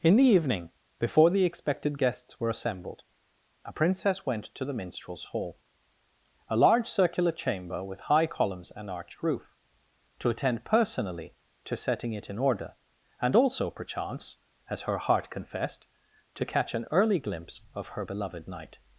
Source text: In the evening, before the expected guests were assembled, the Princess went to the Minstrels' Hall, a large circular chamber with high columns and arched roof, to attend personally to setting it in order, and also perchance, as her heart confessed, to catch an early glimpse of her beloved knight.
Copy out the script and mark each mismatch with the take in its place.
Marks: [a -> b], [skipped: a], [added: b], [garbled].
In the evening, before the expected guests were assembled, [the -> a] Princess went to the Minstrels' Hall, a large circular chamber with high columns and arched roof, to attend personally to setting it in order, and also perchance, as her heart confessed, to catch an early glimpse of her beloved knight.